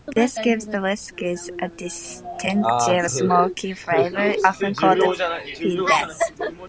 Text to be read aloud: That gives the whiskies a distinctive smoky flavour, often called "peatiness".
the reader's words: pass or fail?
fail